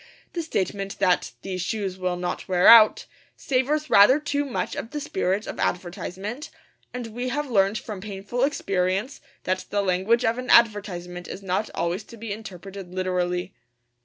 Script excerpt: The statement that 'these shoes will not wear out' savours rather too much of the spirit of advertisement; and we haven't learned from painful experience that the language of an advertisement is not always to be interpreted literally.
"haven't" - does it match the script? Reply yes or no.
no